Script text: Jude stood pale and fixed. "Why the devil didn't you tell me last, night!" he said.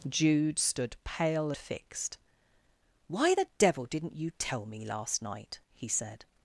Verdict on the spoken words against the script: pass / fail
fail